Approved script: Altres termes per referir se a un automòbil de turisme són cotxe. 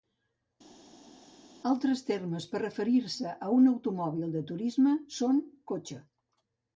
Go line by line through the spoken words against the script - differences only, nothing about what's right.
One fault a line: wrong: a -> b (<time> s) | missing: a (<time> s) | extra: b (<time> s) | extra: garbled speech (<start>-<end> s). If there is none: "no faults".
no faults